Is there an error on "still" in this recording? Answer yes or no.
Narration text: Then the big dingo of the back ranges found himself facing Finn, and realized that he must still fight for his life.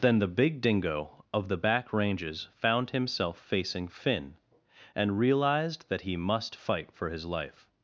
yes